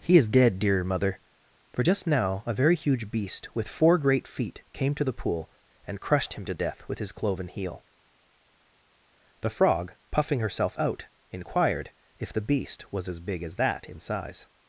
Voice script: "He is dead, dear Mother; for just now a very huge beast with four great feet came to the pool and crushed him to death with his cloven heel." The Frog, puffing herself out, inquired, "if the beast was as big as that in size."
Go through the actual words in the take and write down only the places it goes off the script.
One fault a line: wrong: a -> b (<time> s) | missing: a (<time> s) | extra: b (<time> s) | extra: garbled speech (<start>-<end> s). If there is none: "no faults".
no faults